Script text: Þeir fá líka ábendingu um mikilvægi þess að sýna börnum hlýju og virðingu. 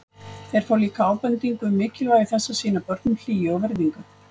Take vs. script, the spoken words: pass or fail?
pass